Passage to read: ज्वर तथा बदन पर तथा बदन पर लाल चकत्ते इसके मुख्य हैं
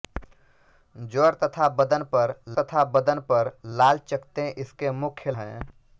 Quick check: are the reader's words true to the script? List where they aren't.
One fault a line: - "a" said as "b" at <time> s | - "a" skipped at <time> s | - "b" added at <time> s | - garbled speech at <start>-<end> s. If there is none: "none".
none